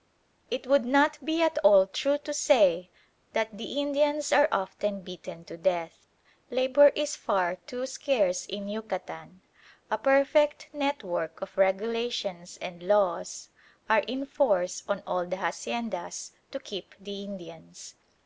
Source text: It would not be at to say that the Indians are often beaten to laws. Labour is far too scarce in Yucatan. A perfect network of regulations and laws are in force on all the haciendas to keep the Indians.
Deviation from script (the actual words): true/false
true